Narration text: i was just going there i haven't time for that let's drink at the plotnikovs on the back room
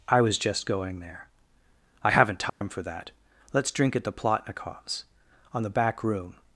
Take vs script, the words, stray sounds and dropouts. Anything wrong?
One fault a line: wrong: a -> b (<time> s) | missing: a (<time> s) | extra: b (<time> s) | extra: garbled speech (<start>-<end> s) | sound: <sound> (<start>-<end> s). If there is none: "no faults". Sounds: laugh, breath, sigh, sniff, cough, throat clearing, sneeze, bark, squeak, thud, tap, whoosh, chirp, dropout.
sound: dropout (2.5-2.6 s)